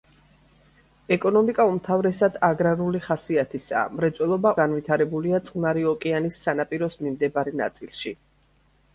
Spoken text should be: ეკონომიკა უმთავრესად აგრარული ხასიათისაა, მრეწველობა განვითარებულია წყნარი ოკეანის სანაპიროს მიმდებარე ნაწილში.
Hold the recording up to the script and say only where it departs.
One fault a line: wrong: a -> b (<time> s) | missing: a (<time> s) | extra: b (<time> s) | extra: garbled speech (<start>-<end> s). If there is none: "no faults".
no faults